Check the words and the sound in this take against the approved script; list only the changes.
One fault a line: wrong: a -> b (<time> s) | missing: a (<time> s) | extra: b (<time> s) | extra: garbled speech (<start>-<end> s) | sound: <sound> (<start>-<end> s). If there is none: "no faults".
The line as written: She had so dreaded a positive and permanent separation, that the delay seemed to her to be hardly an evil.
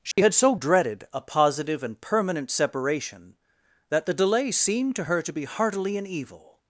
sound: dropout (0.1-0.2 s)
wrong: hardly -> heartily (5.5 s)